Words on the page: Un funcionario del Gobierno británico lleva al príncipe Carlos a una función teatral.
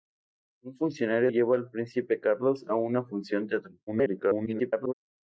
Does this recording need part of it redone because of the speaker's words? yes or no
yes